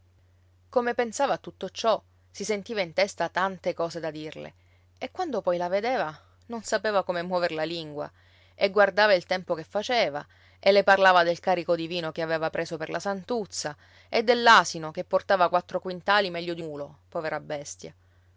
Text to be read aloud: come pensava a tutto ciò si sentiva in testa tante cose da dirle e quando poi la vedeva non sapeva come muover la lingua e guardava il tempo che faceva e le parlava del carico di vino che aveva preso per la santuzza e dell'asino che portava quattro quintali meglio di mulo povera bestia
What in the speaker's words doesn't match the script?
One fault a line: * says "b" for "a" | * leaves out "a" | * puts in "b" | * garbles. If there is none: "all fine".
all fine